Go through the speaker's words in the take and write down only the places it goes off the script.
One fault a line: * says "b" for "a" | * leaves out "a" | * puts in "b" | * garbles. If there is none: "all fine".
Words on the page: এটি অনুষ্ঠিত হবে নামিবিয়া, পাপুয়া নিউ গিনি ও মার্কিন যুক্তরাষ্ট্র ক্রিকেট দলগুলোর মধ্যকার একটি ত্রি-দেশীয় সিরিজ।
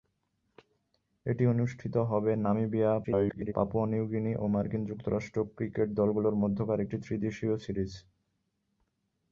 * garbles